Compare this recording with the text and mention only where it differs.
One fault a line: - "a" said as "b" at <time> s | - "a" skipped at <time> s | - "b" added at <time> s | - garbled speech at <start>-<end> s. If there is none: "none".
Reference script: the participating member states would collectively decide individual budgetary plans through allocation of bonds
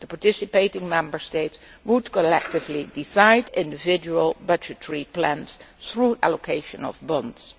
none